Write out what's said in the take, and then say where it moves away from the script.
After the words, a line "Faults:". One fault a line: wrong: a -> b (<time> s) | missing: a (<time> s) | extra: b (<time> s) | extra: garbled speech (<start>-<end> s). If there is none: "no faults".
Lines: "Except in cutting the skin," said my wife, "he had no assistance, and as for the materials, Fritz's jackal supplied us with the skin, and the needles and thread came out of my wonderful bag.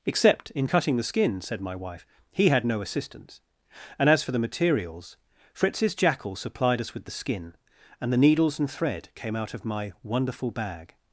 "Except in cutting the skin," said my wife, "he had no assistance, and as for the materials, Fritz's jackal supplied us with the skin, and the needles and thread came out of my wonderful bag.
Faults:
no faults